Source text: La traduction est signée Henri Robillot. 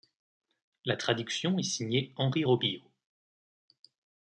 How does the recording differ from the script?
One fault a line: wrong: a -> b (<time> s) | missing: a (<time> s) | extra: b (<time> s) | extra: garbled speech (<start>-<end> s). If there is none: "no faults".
no faults